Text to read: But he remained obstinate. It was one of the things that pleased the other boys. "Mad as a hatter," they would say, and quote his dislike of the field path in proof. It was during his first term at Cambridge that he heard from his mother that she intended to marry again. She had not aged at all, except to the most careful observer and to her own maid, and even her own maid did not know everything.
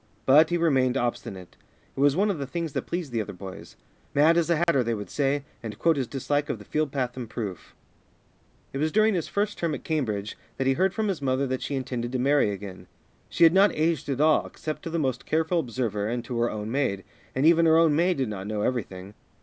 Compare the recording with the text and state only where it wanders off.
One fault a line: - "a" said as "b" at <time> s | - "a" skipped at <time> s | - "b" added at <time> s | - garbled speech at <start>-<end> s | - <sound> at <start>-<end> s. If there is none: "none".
- dropout at 4.6-4.7 s